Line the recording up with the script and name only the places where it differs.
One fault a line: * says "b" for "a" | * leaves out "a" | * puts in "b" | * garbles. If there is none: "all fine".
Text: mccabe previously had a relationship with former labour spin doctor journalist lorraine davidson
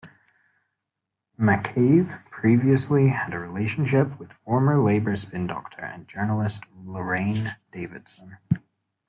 * puts in "and"